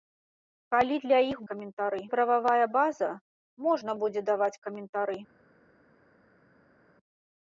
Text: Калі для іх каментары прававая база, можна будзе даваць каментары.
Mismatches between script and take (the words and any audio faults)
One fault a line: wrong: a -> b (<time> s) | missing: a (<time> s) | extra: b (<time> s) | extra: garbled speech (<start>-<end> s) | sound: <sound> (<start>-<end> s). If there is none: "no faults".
no faults